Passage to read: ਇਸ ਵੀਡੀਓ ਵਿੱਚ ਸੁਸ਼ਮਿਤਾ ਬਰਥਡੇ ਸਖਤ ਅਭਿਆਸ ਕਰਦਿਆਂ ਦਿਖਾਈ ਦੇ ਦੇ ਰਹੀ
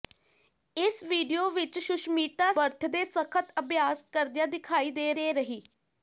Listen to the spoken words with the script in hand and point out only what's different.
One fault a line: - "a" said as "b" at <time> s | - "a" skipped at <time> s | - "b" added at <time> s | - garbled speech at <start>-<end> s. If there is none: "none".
none